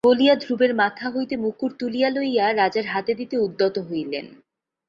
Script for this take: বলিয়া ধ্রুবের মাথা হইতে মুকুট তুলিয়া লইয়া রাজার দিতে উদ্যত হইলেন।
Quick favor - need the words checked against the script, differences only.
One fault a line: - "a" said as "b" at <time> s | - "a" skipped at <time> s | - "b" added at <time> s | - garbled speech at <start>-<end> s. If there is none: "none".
- "হাতে" added at 2.9 s